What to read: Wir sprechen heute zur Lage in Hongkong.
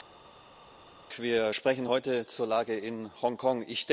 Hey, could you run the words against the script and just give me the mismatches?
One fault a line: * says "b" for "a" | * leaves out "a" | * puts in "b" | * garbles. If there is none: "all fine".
all fine